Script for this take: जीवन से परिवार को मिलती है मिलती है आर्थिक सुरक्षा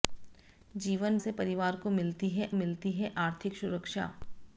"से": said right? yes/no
yes